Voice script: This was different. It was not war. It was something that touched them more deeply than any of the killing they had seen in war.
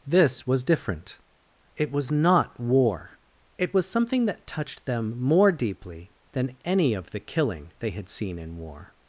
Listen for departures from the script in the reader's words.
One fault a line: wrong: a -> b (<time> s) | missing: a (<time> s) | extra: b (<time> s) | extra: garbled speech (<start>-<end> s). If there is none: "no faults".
no faults